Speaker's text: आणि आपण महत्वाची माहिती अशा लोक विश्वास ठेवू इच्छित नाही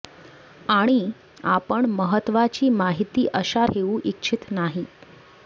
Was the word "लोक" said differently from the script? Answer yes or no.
yes